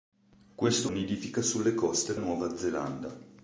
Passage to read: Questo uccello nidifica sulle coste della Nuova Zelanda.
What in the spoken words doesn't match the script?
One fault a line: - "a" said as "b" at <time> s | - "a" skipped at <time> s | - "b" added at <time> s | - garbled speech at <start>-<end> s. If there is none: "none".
- "uccello" skipped at 0.9 s
- "della" skipped at 2.1 s